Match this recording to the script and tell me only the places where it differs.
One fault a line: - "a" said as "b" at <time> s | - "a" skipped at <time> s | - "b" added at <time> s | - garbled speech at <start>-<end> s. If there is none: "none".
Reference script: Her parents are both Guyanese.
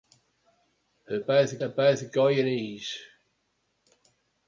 - "parents" said as "both" at 1.2 s